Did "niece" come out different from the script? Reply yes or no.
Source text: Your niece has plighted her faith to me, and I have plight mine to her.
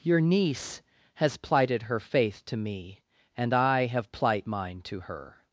no